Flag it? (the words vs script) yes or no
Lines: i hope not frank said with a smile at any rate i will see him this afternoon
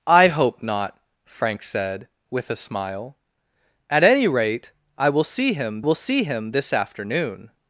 yes